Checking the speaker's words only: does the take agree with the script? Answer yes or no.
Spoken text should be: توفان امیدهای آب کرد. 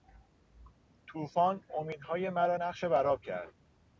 no